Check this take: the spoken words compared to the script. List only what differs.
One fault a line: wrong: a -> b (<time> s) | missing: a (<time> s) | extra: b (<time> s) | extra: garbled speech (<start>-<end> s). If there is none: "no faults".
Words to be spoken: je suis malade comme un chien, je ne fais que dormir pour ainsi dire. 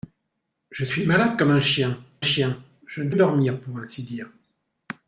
extra: chien (2.2 s)
missing: fais que (3.1 s)